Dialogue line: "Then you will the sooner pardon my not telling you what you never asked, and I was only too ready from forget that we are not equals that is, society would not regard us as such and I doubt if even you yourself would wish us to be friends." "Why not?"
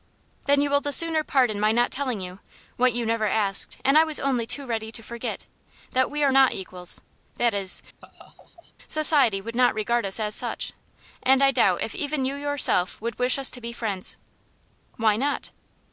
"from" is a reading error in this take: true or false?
true